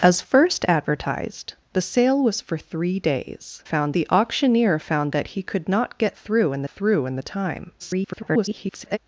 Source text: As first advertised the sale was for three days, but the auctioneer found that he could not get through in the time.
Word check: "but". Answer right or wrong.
wrong